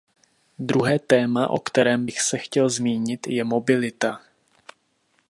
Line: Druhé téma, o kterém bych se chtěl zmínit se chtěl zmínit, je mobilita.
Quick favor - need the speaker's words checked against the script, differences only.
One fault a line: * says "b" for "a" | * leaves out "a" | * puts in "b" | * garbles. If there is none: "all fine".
* leaves out "se chtěl zmínit"